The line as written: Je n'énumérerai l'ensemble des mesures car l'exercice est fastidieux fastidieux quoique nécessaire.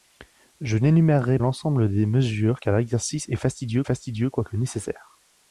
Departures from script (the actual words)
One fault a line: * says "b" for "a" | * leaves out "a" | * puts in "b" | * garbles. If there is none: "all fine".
all fine